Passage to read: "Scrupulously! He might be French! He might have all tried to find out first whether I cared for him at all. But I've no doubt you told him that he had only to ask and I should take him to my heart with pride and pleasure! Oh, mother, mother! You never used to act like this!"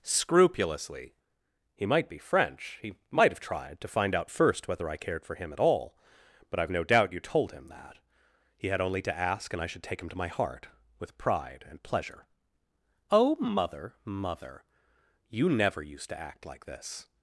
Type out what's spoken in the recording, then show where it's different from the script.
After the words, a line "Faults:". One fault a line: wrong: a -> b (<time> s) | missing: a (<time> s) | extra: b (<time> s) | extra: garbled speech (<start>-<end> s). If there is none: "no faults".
"Scrupulously! He might be French! He might have tried to find out first whether I cared for him at all. But I've no doubt you told him that he had only to ask and I should take him to my heart with pride and pleasure! Oh, mother, mother! You never used to act like this!"
Faults:
missing: all (3.4 s)